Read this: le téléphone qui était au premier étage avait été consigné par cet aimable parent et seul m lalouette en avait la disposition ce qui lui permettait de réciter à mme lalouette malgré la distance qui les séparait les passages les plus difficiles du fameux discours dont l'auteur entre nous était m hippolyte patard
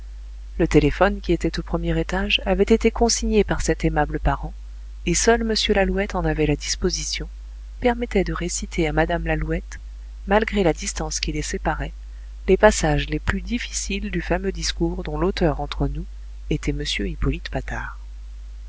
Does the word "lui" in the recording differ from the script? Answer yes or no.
yes